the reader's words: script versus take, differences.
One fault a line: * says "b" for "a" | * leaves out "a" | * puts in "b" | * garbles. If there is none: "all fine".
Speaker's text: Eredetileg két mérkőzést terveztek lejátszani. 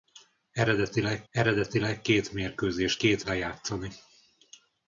* puts in "eredetileg"
* says "két" for "terveztek"